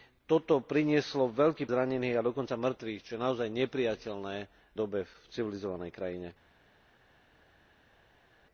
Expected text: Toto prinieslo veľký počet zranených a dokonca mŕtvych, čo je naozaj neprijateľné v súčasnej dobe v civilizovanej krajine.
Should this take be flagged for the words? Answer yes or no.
yes